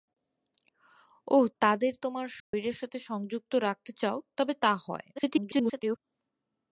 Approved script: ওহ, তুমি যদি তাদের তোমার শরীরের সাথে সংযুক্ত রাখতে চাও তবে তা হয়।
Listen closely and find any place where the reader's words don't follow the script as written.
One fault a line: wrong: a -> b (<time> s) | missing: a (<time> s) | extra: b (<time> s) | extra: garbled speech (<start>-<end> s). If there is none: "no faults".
missing: তুমি যদি (1.4 s)
extra: garbled speech (5.2-6.0 s)